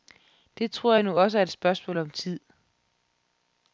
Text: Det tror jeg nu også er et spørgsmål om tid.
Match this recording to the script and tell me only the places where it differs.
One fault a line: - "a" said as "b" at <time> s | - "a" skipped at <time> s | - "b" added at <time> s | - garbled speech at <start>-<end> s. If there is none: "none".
none